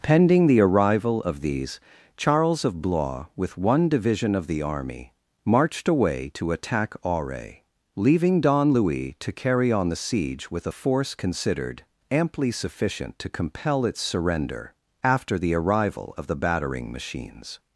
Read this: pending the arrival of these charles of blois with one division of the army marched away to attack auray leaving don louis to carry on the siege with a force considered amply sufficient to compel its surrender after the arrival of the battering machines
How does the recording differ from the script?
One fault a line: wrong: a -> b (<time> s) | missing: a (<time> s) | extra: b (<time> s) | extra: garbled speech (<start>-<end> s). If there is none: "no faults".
no faults